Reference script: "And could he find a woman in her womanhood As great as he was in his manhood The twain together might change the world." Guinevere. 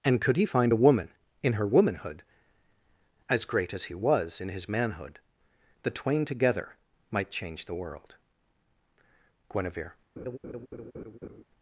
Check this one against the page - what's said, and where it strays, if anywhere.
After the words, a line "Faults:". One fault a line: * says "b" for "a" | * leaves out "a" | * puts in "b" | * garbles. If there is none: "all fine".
"And could he find a woman in her womanhood As great as he was in his manhood The twain together might change the world." Guinevere.
Faults:
all fine